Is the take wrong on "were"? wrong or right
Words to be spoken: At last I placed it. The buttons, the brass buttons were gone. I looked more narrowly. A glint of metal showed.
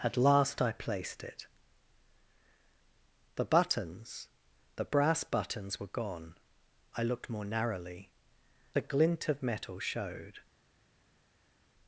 right